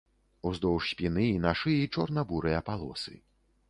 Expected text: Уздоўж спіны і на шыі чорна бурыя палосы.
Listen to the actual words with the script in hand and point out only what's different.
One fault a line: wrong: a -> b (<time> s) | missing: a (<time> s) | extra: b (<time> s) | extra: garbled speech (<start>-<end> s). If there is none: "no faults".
no faults